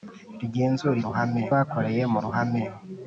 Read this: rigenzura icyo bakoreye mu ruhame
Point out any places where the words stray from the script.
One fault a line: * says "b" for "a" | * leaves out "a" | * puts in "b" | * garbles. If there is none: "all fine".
* says "ruhame" for "icyo"